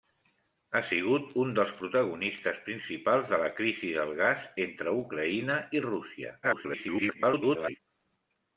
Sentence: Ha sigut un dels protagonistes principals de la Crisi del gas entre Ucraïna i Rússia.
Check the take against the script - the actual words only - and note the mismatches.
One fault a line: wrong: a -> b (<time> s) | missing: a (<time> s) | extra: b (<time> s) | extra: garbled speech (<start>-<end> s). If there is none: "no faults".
extra: garbled speech (6.4-7.8 s)